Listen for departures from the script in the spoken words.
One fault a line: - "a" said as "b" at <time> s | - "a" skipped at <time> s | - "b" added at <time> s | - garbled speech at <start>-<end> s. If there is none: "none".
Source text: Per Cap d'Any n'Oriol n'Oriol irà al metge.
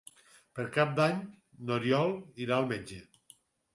- "n'Oriol" skipped at 2.2 s